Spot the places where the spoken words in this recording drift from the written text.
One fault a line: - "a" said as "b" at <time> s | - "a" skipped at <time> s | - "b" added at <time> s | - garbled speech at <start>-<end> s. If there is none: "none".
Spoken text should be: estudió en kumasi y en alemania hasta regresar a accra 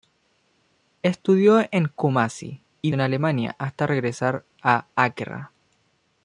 none